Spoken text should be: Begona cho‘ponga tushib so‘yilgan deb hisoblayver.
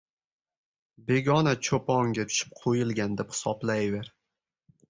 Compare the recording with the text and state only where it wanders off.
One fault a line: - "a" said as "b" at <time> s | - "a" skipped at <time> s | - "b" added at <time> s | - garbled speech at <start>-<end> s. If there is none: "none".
none